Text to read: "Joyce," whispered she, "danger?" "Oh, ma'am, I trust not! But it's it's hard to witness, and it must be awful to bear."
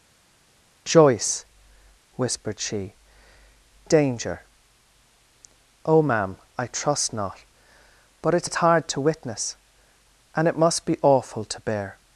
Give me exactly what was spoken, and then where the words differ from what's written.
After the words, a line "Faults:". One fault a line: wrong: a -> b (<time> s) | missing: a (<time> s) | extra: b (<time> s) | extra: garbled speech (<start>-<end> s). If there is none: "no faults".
"Joyce," whispered she, "danger?" "Oh, ma'am, I trust not! But it's it's hard to witness, and it must be awful to bear."
Faults:
no faults